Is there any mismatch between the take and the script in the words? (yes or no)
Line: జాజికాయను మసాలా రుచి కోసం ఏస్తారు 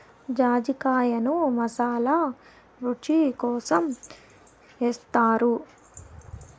no